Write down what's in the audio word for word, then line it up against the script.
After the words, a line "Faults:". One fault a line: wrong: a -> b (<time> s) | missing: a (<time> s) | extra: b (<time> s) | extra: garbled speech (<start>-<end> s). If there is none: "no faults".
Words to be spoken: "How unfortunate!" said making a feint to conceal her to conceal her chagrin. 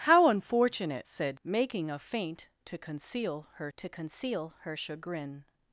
"How unfortunate!" said making a feint to conceal her to conceal her chagrin.
Faults:
no faults